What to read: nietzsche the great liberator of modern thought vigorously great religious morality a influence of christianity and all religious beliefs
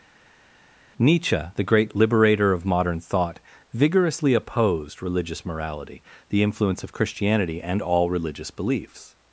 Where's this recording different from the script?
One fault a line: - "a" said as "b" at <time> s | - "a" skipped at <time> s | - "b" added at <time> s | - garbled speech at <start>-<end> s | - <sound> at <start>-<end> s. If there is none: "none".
- "great" said as "opposed" at 4.4 s
- "a" said as "the" at 6.3 s